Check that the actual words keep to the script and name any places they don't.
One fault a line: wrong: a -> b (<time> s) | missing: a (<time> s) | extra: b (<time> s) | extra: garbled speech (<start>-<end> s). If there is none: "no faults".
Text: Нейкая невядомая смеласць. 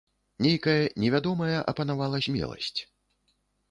extra: апанавала (1.7 s)